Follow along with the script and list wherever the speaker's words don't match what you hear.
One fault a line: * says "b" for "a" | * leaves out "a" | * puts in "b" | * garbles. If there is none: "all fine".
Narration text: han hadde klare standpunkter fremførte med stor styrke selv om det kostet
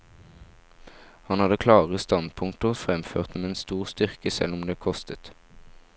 all fine